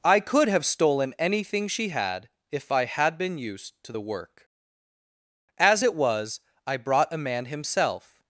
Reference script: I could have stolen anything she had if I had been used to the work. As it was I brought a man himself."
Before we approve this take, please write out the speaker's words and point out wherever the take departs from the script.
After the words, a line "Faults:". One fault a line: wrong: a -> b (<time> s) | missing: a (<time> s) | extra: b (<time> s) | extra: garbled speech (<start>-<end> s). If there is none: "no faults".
I could have stolen anything she had if I had been used to the work. As it was I brought a man himself."
Faults:
no faults